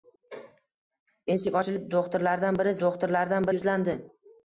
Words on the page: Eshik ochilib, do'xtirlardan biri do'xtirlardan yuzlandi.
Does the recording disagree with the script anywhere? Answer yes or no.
no